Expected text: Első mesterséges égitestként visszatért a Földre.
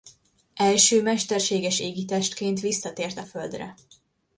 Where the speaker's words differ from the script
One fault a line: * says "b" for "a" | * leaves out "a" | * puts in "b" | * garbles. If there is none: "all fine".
all fine